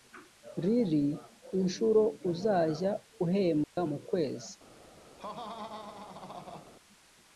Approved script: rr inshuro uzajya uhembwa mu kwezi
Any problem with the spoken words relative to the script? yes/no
no